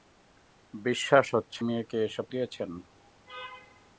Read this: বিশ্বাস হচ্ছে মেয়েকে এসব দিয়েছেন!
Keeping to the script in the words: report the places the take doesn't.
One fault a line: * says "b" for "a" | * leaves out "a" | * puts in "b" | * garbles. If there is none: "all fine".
all fine